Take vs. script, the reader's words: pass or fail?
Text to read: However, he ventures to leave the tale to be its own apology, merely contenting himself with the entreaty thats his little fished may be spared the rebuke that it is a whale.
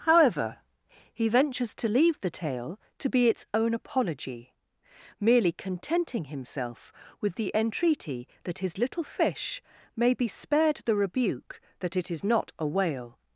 fail